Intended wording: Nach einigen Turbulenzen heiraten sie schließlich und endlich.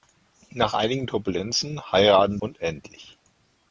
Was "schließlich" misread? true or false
true